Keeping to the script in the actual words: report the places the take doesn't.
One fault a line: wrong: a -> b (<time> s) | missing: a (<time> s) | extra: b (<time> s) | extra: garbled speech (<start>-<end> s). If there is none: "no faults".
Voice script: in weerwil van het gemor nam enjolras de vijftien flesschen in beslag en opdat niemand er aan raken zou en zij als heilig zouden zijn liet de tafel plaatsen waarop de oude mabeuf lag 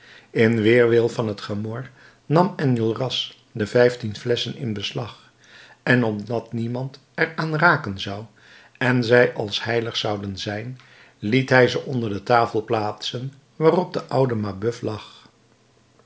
extra: hij ze onder (11.5 s)